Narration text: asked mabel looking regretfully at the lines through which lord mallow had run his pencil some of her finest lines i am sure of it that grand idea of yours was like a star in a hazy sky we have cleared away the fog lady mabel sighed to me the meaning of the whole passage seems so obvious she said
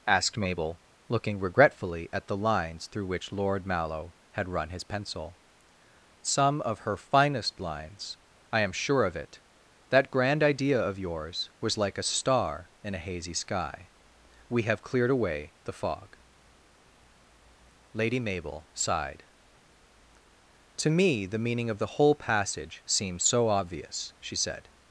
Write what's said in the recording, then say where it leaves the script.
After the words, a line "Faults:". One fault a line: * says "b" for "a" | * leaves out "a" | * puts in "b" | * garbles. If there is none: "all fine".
asked mabel looking regretfully at the lines through which lord mallow had run his pencil some of her finest lines i am sure of it that grand idea of yours was like a star in a hazy sky we have cleared away the fog lady mabel sighed to me the meaning of the whole passage seems so obvious she said
Faults:
all fine